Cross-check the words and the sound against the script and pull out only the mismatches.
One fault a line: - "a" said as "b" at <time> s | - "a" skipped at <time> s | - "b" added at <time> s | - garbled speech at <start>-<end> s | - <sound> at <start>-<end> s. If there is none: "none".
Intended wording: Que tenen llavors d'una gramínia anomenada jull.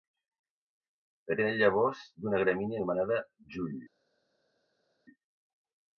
none